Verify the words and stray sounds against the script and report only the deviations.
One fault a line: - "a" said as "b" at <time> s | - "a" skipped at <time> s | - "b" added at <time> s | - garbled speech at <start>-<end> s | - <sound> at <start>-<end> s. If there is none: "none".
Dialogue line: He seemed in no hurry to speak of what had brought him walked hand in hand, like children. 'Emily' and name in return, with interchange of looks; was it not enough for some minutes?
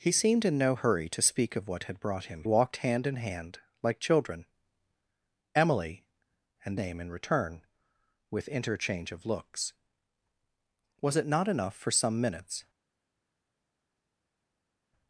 none